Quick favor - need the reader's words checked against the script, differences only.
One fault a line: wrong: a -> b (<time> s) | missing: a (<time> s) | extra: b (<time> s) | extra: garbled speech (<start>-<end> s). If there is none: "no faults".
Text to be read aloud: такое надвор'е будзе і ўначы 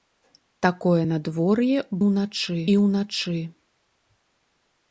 wrong: будзе -> ўначы (2.1 s)